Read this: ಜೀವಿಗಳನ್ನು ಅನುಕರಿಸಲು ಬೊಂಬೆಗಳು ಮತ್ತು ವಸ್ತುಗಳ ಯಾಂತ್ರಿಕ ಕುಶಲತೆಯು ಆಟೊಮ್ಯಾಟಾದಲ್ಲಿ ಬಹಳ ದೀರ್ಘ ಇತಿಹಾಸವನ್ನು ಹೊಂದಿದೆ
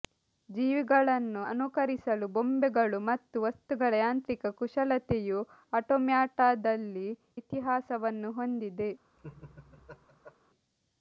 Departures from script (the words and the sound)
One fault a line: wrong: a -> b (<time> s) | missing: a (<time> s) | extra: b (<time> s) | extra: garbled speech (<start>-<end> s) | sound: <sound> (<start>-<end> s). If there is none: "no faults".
missing: ಬಹಳ ದೀರ್ಘ (7.1 s)
sound: laugh (9.2-10.3 s)